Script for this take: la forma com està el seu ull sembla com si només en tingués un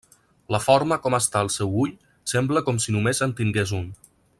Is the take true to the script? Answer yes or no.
yes